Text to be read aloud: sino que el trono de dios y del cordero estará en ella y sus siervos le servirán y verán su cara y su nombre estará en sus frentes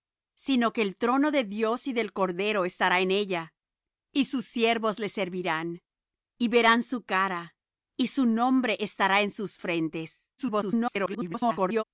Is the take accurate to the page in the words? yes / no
no